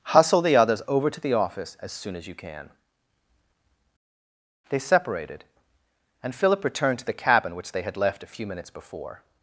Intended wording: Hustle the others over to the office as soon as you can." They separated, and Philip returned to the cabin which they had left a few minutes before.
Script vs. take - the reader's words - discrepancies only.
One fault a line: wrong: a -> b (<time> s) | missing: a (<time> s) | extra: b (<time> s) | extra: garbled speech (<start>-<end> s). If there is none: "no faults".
no faults